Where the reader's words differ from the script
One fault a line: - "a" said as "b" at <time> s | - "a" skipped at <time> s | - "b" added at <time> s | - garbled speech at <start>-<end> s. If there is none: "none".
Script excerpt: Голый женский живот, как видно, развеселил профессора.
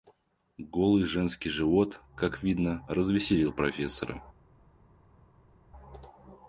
none